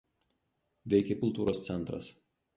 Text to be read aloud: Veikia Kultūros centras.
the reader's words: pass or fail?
pass